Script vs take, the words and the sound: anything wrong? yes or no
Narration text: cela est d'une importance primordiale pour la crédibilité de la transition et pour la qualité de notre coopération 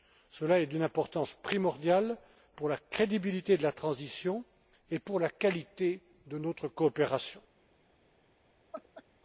yes